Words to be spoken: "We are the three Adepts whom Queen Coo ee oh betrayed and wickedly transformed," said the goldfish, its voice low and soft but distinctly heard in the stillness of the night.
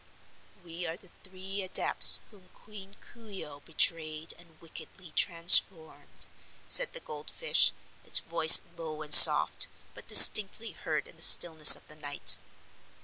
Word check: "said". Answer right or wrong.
right